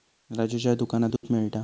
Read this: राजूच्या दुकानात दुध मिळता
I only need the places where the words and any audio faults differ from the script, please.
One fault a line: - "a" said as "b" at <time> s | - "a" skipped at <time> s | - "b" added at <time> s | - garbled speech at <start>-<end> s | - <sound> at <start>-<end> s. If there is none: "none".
- dropout at 1.2-1.2 s